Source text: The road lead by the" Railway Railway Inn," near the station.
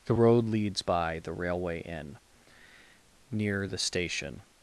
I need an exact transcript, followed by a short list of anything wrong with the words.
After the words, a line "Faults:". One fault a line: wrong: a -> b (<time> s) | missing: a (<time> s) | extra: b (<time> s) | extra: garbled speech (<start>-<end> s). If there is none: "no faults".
The road leads by the" Railway Inn," near the station.
Faults:
wrong: lead -> leads (0.5 s)
missing: Railway (1.8 s)